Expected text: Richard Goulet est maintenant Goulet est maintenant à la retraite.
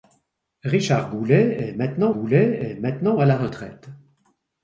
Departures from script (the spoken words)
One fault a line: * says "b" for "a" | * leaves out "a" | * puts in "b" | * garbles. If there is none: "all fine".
all fine